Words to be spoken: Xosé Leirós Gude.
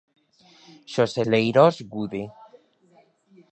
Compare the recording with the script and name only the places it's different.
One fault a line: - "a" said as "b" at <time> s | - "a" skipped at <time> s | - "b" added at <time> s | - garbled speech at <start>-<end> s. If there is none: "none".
none